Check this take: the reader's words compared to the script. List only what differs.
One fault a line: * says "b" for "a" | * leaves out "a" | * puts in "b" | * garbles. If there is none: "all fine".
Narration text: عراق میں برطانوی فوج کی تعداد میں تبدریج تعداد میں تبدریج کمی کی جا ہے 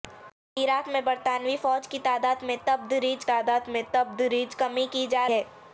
all fine